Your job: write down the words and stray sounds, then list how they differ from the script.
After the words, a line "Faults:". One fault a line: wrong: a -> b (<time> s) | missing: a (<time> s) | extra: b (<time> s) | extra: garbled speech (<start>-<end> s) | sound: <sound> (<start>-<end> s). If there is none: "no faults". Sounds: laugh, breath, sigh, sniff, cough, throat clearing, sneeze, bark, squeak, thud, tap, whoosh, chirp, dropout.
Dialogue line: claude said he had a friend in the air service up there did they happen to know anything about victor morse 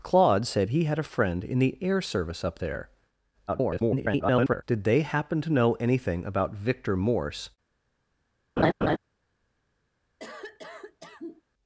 claude said he had a friend in the air service up there [garbled] did they happen to know anything about victor morse
Faults:
extra: garbled speech (3.5-4.6 s)
sound: laugh (8.6-9.0 s)
sound: cough (10.2-11.4 s)